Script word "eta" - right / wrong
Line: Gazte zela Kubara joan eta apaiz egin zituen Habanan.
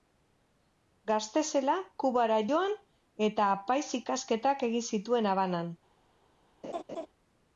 right